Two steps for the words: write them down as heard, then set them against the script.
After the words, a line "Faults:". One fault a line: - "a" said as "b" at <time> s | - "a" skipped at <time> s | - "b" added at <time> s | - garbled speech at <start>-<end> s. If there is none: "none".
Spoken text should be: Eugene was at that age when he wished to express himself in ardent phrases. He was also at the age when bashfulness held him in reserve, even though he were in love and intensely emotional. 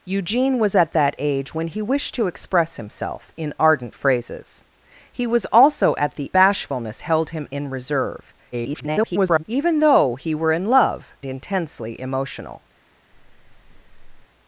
Eugene was at that age when he wished to express himself in ardent phrases. He was also at the bashfulness held him in reserve, [garbled] even though he were in love intensely emotional.
Faults:
- "age when" skipped at 6.3 s
- garbled speech at 8.5-9.4 s
- "and" skipped at 11.2 s